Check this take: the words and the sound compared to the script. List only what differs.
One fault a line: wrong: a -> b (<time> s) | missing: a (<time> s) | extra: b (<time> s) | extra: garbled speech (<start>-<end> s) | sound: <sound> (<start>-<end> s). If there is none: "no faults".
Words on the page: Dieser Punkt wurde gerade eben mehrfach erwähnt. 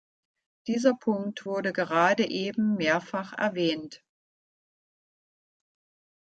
no faults